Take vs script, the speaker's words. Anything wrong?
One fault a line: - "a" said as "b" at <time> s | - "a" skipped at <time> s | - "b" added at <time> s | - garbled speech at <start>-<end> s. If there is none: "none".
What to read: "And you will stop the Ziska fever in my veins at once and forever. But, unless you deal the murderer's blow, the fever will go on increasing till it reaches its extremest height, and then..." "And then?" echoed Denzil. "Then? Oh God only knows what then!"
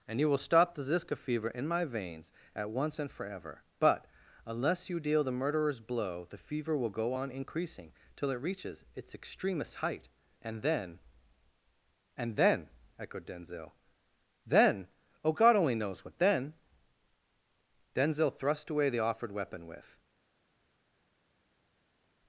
- "Denzil thrust away the offered weapon with" added at 17.9 s